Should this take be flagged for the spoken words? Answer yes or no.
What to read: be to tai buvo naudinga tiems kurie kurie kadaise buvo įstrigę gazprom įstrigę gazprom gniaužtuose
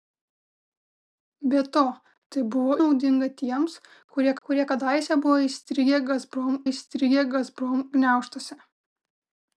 no